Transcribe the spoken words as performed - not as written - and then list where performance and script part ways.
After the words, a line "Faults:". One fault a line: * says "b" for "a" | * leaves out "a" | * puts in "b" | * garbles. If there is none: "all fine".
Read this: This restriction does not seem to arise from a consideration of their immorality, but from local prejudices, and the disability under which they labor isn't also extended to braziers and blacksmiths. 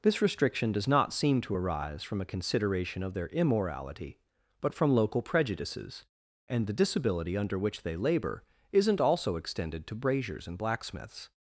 This restriction does not seem to arise from a consideration of their immorality, but from local prejudices, and the disability under which they labor isn't also extended to braziers and blacksmiths.
Faults:
all fine